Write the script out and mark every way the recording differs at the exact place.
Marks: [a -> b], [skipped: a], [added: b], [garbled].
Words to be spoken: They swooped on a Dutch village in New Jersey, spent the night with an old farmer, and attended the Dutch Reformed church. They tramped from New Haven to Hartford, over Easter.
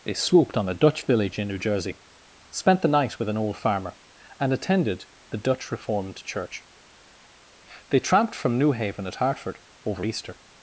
They swooped on a Dutch village in New Jersey, spent the night with an old farmer, and attended the Dutch Reformed church. They tramped from New Haven [to -> at] Hartford, over Easter.